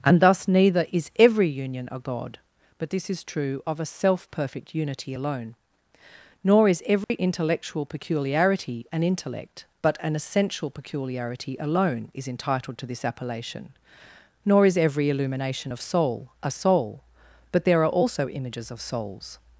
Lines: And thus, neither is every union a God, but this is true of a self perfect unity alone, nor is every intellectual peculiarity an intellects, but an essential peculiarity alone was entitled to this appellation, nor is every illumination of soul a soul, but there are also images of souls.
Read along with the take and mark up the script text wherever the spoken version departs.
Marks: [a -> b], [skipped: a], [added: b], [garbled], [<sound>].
And thus, neither is every union a God, but this is true of a self perfect unity alone, nor is every [dropout] intellectual peculiarity an [intellects, -> intellect] but an essential peculiarity alone [was -> is] entitled to this appellation, nor is every illumination of soul a soul, but there are also images of souls.